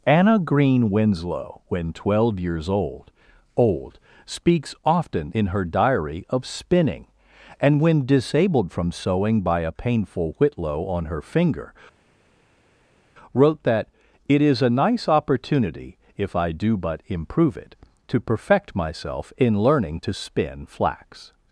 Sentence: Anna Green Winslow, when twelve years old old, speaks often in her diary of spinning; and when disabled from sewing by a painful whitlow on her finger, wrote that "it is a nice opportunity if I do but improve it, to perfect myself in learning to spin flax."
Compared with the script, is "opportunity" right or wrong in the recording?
right